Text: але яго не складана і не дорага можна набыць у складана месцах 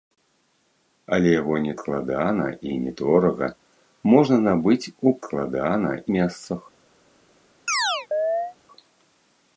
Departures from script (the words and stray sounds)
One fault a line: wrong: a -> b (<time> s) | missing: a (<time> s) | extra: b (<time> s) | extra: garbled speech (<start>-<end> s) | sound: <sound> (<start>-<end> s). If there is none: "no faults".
sound: chirp (7.7-8.6 s)